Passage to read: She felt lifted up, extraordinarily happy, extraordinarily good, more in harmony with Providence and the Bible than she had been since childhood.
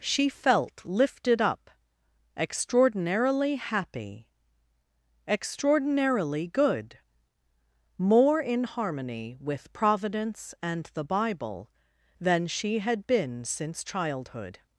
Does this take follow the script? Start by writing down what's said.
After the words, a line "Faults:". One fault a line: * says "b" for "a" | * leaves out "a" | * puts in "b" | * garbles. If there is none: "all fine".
She felt lifted up, extraordinarily happy, extraordinarily good, more in harmony with Providence and the Bible than she had been since childhood.
Faults:
all fine